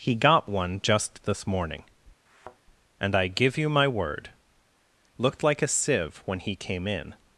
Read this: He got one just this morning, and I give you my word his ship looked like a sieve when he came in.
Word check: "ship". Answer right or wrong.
wrong